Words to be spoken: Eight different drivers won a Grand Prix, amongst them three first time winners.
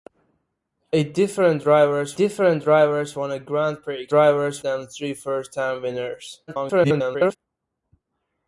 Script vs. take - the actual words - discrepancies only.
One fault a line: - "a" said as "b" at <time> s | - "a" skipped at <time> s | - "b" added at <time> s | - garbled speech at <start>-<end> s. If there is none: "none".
- "different drivers" added at 2.1 s
- "amongst" said as "drivers" at 4.1 s
- garbled speech at 6.5-7.4 s